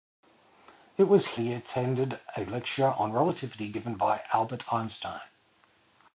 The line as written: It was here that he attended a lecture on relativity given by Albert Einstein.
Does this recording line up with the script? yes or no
no